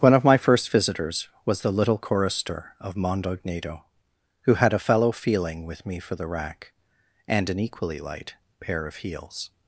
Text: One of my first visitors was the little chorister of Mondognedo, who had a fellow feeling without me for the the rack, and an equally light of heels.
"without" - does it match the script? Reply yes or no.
no